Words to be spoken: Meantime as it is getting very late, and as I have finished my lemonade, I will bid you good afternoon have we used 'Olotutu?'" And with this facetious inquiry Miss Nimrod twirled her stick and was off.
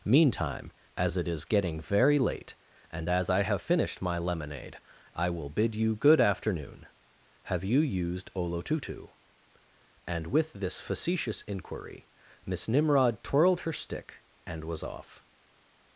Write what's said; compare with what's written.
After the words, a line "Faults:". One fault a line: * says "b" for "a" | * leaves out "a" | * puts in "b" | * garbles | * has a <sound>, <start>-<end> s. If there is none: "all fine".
Meantime as it is getting very late, and as I have finished my lemonade, I will bid you good afternoon have you used 'Olotutu?'" And with this facetious inquiry Miss Nimrod twirled her stick and was off.
Faults:
* says "you" for "we"